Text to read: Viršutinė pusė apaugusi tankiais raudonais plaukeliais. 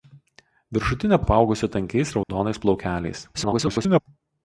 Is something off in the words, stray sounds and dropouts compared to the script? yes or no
yes